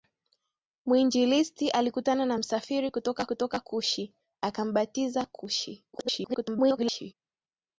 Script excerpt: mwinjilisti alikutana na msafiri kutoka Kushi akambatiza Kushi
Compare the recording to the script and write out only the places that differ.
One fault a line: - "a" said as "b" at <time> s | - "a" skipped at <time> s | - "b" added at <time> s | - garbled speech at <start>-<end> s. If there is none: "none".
- "kutoka" added at 3.3 s
- garbled speech at 5.9-7.1 s